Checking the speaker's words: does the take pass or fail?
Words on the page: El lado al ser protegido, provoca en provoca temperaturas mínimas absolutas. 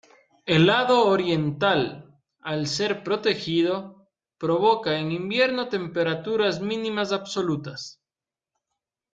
fail